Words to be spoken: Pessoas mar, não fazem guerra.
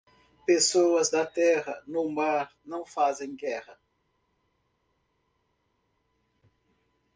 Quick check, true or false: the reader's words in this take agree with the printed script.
false